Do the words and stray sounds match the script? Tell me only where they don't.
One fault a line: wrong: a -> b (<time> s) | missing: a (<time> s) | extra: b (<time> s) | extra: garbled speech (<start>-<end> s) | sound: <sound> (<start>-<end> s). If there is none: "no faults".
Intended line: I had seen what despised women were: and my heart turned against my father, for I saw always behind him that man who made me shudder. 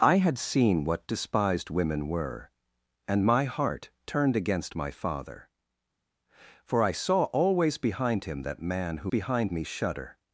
wrong: made -> behind (9.1 s)